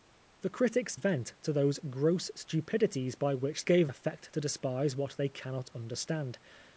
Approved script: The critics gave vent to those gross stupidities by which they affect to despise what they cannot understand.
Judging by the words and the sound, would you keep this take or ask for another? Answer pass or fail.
fail